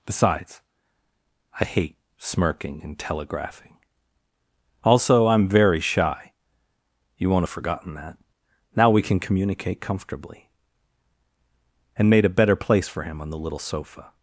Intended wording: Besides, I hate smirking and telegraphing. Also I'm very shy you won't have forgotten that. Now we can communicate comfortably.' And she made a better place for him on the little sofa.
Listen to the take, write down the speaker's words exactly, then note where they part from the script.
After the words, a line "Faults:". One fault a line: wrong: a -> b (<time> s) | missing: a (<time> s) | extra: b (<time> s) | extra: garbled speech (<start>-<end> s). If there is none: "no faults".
Besides, I hate smirking and telegraphing. Also I'm very shy you won't have forgotten that. Now we can communicate comfortably.' And made a better place for him on the little sofa.
Faults:
missing: she (12.1 s)